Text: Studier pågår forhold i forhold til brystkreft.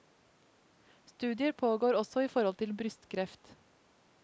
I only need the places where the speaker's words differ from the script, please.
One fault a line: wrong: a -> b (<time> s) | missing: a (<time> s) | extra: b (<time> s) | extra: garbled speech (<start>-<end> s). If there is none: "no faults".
wrong: forhold -> også (2.0 s)